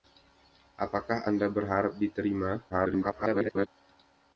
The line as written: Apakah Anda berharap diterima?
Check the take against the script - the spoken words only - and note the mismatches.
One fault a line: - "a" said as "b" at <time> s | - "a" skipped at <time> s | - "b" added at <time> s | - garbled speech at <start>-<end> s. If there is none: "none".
- garbled speech at 2.7-3.7 s